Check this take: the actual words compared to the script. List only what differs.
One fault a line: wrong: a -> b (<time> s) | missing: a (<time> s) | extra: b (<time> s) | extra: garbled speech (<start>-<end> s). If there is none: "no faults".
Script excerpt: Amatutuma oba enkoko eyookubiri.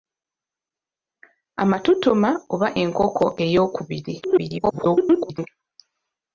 extra: garbled speech (4.2-5.5 s)